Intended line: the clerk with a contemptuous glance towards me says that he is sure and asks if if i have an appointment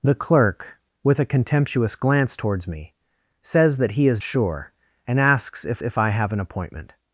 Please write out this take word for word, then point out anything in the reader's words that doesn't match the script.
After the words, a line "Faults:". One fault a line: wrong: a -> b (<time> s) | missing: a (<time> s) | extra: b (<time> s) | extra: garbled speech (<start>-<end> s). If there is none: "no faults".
the clerk with a contemptuous glance towards me says that he is sure and asks if if i have an appointment
Faults:
no faults